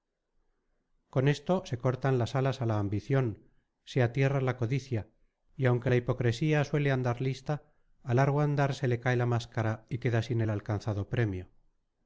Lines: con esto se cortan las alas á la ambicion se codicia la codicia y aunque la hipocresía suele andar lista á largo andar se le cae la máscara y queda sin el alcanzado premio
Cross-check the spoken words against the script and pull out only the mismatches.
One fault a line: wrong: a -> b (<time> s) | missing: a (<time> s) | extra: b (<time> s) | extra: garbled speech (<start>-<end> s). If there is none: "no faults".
wrong: codicia -> atierra (4.0 s)